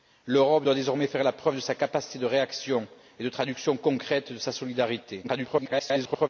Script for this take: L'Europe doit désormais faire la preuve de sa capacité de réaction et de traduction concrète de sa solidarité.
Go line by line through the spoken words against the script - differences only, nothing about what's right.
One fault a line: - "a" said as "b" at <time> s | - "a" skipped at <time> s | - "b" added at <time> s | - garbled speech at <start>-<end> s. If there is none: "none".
- garbled speech at 5.2-6.3 s